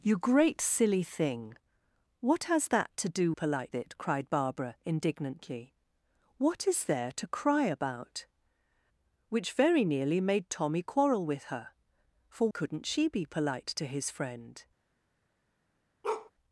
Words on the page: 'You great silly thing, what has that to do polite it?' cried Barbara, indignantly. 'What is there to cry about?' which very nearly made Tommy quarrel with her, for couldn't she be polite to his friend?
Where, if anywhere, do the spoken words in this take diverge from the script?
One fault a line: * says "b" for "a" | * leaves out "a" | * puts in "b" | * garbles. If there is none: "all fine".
all fine